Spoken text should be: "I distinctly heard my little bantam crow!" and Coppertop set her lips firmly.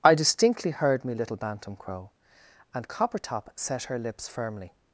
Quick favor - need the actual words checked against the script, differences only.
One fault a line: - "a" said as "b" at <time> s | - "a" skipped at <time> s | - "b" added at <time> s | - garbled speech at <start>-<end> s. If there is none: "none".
- "my" said as "me" at 1.1 s